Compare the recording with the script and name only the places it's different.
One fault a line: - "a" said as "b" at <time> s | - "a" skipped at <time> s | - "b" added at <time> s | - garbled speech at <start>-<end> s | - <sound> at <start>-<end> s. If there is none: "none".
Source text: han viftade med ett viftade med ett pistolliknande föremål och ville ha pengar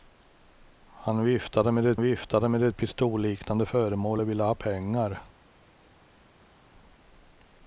none